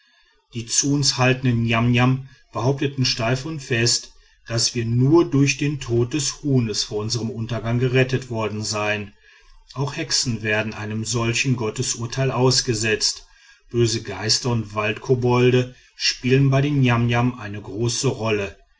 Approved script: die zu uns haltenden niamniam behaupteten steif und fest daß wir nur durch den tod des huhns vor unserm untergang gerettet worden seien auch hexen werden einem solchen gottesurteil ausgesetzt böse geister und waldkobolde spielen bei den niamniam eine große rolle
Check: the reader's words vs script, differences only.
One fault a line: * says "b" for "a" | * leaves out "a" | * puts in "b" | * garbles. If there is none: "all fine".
all fine